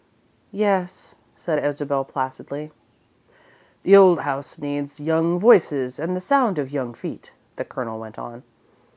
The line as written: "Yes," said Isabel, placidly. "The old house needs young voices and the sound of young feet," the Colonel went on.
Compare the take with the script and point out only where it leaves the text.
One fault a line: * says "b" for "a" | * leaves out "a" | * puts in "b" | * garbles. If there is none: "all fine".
all fine